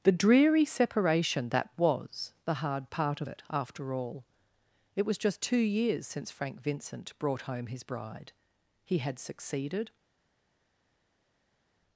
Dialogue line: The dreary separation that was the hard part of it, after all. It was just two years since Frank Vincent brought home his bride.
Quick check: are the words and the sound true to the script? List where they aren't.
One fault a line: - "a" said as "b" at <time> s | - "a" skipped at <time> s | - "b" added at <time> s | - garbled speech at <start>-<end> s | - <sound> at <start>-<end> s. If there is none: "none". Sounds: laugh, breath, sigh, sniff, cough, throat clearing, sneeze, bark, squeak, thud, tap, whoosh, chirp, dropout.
- "He had succeeded" added at 8.8 s